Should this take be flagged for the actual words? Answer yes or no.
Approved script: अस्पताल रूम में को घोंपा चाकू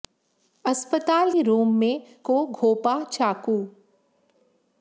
no